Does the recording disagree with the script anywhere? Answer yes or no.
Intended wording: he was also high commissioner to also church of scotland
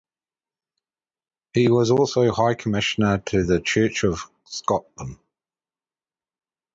yes